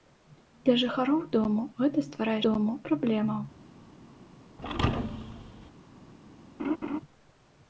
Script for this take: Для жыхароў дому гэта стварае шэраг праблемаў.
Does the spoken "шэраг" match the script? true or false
false